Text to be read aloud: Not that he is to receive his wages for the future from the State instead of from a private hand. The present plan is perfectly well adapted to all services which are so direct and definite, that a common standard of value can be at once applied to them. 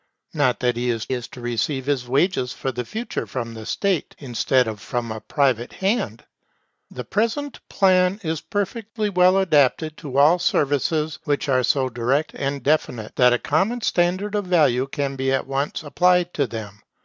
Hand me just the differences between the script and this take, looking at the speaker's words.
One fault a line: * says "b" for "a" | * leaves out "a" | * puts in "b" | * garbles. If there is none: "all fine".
* puts in "is"